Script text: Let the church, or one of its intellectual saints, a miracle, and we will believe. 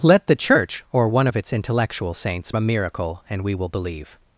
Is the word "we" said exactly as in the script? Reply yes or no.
yes